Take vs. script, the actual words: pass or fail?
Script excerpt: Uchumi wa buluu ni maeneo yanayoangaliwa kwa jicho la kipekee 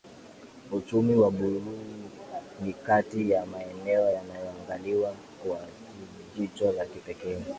fail